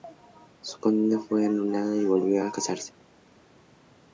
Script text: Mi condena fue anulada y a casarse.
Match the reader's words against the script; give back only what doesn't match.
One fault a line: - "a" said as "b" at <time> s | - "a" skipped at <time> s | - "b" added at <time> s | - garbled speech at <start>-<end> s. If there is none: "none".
- "Mi" said as "Su" at 0.6 s
- "volvió" added at 2.0 s